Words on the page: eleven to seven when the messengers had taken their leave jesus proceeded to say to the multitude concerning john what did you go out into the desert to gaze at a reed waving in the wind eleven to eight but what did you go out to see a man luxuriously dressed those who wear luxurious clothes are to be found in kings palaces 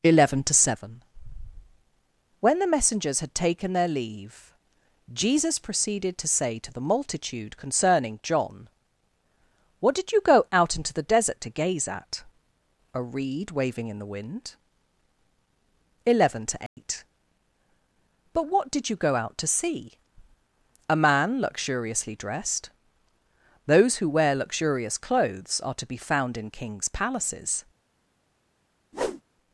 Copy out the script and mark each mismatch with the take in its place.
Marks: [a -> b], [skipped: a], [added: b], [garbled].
eleven to seven when the messengers had taken their leave jesus proceeded to say to the multitude concerning john what did you go out into the desert to gaze at a reed waving in the wind eleven to eight but what did you go out to see a man luxuriously dressed those who wear luxurious clothes are to be found in kings palaces